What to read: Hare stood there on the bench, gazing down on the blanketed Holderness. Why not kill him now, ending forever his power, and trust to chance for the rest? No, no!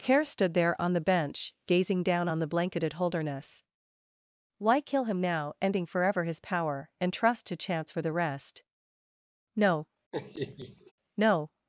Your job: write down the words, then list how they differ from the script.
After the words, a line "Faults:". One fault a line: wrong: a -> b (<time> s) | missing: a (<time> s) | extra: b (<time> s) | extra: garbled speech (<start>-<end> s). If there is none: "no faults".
Hare stood there on the bench, gazing down on the blanketed Holderness. Why kill him now, ending forever his power, and trust to chance for the rest? No, no!
Faults:
missing: not (4.8 s)